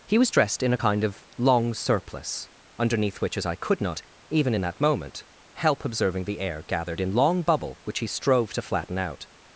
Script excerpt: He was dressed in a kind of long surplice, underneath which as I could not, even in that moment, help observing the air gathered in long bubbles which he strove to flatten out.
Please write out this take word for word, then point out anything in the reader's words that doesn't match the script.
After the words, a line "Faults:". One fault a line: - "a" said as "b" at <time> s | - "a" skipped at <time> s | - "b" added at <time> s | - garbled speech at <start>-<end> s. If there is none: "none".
He was dressed in a kind of long surplice, underneath which as I could not, even in that moment, help observing the air gathered in long bubble which he strove to flatten out.
Faults:
- "bubbles" said as "bubble" at 7.4 s